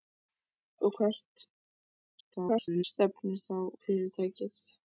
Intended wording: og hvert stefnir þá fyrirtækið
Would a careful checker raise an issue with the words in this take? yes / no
yes